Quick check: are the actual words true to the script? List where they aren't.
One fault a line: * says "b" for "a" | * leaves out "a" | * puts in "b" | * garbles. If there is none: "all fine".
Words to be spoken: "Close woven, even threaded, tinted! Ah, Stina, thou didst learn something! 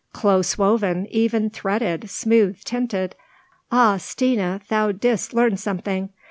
* puts in "smooth"